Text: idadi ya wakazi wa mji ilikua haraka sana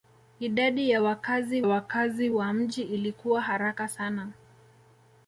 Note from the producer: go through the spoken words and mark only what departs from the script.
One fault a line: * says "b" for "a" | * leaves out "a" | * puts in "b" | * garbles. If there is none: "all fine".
* puts in "wakazi"